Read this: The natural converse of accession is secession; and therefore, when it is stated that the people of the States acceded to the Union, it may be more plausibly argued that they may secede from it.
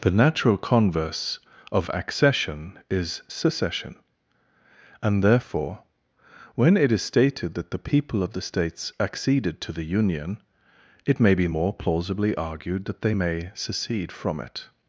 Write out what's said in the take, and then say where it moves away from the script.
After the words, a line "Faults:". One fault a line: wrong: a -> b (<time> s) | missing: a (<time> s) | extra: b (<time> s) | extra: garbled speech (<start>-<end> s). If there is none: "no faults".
The natural converse of accession is secession; and therefore, when it is stated that the people of the States acceded to the Union, it may be more plausibly argued that they may secede from it.
Faults:
no faults